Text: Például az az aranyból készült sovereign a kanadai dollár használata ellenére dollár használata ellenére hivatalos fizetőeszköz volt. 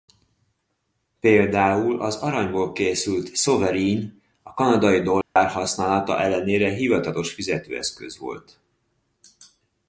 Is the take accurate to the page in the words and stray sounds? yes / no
no